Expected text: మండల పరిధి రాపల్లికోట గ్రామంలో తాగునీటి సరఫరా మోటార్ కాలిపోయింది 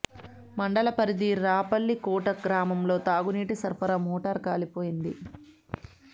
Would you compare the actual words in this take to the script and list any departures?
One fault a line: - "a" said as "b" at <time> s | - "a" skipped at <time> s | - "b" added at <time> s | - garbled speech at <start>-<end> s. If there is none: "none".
none